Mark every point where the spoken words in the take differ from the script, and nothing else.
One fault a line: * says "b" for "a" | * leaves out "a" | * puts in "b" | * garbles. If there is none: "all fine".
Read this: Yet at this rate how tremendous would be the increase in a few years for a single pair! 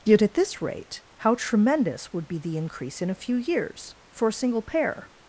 all fine